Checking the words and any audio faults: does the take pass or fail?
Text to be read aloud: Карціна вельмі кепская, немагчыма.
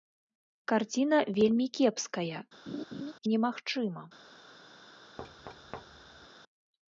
fail